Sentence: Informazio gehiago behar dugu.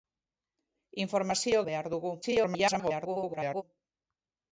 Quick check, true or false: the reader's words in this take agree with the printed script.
false